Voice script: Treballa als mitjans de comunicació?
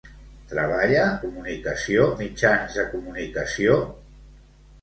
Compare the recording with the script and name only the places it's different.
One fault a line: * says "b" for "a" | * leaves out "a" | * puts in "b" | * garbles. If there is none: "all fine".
* says "comunicació" for "als"